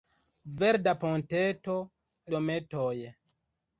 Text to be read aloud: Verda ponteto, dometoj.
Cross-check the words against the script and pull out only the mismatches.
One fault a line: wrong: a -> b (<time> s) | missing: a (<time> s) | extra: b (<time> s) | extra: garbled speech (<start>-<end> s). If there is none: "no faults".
no faults